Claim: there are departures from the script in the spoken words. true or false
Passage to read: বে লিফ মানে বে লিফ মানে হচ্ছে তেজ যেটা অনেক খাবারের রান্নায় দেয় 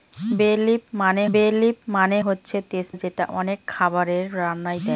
false